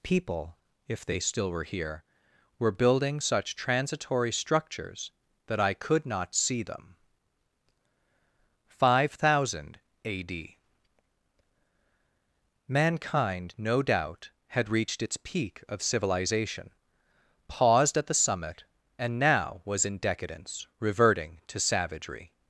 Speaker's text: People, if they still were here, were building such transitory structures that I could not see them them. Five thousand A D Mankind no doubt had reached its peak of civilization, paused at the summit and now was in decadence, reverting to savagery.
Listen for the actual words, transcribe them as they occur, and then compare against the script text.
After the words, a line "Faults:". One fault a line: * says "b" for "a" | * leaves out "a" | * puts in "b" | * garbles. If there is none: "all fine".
People, if they still were here, were building such transitory structures that I could not see them. Five thousand A D Mankind no doubt had reached its peak of civilization, paused at the summit and now was in decadence, reverting to savagery.
Faults:
* leaves out "them"